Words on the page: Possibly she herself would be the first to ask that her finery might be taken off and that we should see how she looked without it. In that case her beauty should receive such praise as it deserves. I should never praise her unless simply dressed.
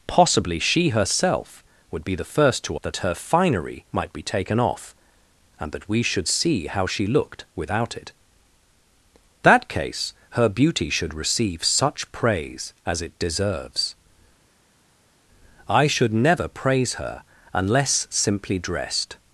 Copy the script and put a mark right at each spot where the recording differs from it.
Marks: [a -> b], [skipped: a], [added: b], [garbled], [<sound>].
Possibly she herself would be the first to [skipped: ask] that her finery might be taken off and that we should see how she looked without it. [skipped: In] that case her beauty should receive such praise as it deserves. I should never praise her unless simply dressed.